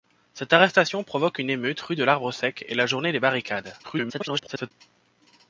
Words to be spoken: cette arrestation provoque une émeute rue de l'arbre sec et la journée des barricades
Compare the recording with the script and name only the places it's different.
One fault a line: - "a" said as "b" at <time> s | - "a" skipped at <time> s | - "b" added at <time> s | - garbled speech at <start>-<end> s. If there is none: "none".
- garbled speech at 3.8-4.7 s